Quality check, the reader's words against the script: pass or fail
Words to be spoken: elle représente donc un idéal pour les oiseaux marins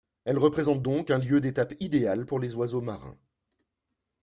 fail